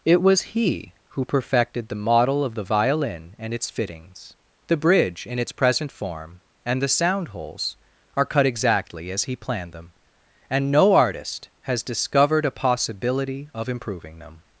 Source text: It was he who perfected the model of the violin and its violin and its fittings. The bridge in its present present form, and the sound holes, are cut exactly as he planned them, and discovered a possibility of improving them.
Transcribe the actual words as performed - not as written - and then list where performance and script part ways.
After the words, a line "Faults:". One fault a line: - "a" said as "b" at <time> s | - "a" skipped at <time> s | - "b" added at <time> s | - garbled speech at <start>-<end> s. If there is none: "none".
It was he who perfected the model of the violin and its fittings. The bridge in its present form, and the sound holes, are cut exactly as he planned them, and no artist has discovered a possibility of improving them.
Faults:
- "violin and its" skipped at 3.7 s
- "present" skipped at 5.9 s
- "no artist has" added at 10.7 s